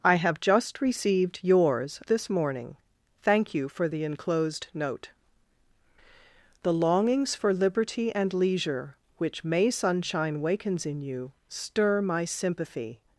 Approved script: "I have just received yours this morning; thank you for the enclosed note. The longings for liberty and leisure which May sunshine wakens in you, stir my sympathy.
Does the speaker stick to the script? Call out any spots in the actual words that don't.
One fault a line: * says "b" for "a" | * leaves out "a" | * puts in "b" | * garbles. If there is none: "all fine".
all fine